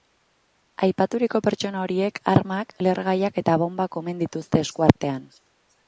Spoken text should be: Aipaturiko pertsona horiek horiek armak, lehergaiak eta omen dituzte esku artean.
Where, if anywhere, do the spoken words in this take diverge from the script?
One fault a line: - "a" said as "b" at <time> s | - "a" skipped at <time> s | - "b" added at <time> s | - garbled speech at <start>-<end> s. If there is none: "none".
- "horiek" skipped at 2.2 s
- "bonbak" added at 3.6 s